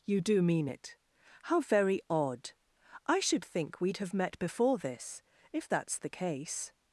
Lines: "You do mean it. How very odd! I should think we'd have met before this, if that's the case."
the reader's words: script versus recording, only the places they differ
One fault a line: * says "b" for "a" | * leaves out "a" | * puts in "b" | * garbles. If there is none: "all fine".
all fine